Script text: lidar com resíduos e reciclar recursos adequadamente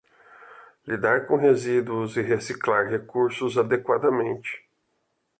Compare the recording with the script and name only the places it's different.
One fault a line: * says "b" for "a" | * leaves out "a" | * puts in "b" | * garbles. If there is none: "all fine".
all fine